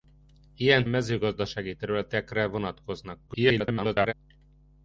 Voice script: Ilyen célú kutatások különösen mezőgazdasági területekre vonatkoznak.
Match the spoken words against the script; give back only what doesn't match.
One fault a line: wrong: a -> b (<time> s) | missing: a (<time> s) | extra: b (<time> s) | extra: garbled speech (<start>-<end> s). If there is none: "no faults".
missing: célú kutatások különösen (0.8 s)
extra: garbled speech (3.3-4.1 s)